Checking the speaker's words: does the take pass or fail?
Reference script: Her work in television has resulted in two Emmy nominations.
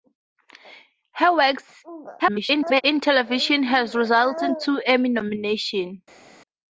fail